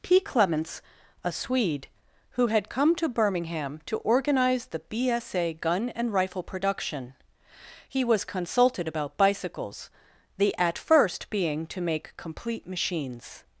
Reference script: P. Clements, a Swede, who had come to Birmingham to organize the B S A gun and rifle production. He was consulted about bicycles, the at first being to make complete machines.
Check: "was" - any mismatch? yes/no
no